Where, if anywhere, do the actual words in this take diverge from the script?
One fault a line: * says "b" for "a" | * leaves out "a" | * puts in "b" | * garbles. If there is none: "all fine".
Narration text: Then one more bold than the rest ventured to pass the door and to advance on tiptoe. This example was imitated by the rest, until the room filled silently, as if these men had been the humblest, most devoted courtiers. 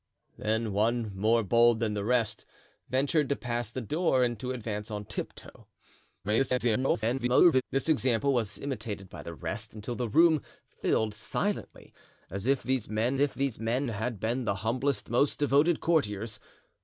* garbles
* puts in "if these men"